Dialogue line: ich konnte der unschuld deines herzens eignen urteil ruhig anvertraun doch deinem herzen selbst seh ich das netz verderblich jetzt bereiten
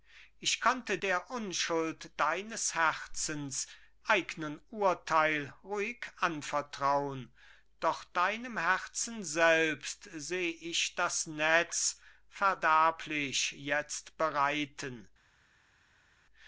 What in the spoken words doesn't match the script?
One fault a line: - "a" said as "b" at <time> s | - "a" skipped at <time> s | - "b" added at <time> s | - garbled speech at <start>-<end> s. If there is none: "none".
none